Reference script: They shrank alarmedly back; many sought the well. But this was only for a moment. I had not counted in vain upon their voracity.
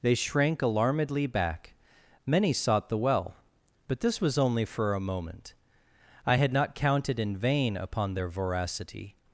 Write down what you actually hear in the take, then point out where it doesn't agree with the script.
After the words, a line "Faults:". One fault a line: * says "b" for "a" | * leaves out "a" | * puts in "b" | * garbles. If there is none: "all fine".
They shrank alarmedly back; many sought the well. But this was only for a moment. I had not counted in vain upon their voracity.
Faults:
all fine